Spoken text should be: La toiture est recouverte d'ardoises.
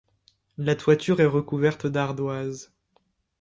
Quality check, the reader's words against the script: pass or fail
pass